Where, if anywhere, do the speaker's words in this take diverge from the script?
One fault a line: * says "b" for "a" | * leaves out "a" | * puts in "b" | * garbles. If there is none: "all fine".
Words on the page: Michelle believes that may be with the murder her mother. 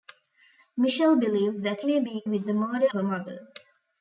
all fine